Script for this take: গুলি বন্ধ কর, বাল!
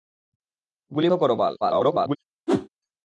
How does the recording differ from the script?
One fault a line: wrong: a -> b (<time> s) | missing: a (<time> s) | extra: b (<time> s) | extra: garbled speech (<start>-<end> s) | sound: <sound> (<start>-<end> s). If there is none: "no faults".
missing: বন্ধ (1.1 s)
extra: garbled speech (1.6-2.2 s)
sound: whoosh (2.5-2.7 s)